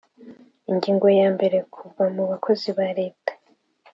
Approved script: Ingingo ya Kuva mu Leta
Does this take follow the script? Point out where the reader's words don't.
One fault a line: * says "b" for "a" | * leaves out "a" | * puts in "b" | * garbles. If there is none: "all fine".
* puts in "mbere"
* puts in "bakozi ba"